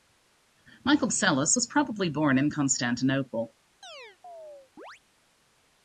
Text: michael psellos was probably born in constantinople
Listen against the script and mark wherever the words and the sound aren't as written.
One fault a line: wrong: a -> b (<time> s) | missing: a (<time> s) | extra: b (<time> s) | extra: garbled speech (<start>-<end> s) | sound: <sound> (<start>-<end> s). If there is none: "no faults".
sound: chirp (3.8-5.0 s)